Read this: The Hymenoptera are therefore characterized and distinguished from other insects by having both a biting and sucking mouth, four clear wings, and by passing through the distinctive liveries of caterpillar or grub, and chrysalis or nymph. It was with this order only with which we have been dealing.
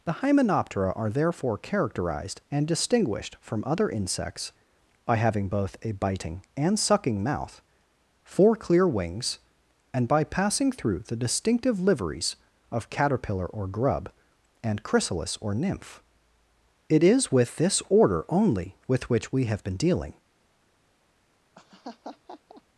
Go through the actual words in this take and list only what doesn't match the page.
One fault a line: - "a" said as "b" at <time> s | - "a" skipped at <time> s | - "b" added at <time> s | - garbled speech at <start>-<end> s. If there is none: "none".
- "was" said as "is" at 17.0 s